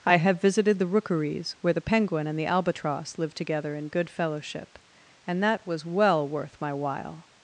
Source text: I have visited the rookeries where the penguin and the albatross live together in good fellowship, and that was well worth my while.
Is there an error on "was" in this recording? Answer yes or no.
no